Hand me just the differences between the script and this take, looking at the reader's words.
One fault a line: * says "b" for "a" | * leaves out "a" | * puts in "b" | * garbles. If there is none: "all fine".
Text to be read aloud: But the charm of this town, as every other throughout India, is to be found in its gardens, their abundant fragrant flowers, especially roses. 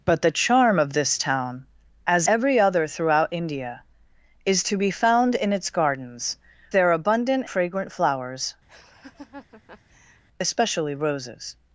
all fine